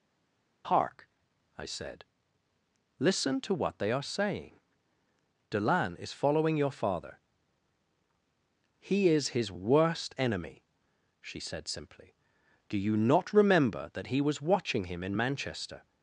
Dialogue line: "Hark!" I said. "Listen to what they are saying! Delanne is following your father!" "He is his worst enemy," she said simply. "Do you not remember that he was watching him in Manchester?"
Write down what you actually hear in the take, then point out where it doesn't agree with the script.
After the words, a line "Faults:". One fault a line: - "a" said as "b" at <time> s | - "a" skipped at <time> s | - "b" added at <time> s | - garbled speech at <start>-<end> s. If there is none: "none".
"Hark!" I said. "Listen to what they are saying! Delanne is following your father!" "He is his worst enemy," she said simply. "Do you not remember that he was watching him in Manchester?"
Faults:
none